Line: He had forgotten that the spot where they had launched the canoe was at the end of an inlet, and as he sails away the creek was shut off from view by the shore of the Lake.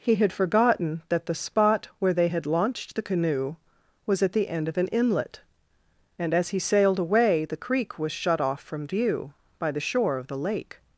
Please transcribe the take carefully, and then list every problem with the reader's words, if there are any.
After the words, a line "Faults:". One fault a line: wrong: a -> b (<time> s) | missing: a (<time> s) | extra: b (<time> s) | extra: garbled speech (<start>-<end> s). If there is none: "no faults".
He had forgotten that the spot where they had launched the canoe was at the end of an inlet, and as he sailed away the creek was shut off from view by the shore of the Lake.
Faults:
wrong: sails -> sailed (6.6 s)